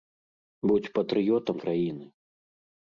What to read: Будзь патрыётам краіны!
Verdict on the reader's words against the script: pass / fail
pass